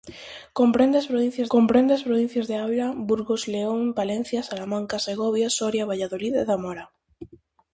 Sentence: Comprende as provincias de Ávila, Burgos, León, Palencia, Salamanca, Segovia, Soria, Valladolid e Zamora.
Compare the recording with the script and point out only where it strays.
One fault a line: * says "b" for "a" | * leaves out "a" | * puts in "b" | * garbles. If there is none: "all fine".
* puts in "comprende as provincias"